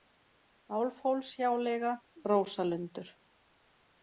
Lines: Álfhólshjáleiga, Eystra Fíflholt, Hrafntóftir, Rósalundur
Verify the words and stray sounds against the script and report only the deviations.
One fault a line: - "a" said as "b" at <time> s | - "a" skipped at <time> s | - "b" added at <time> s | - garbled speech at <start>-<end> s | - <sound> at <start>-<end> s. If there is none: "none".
- "Eystra Fíflholt Hrafntóftir" skipped at 1.9 s